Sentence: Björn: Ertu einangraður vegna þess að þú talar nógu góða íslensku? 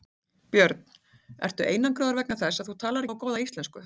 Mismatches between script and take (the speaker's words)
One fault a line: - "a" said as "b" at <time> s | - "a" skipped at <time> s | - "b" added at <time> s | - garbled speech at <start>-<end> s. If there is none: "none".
none